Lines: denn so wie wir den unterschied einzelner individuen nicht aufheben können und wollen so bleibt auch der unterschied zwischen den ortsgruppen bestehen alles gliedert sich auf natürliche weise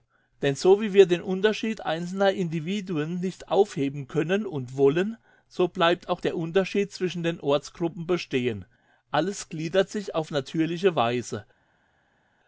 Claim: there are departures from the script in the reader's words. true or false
false